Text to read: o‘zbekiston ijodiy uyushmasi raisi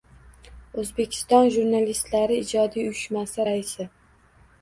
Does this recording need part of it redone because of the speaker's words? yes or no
yes